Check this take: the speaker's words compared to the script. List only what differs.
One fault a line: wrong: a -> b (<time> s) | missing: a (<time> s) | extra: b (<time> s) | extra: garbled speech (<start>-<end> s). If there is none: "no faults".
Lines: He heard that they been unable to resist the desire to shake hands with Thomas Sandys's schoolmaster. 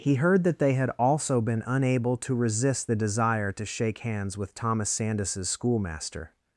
extra: had also (0.7 s)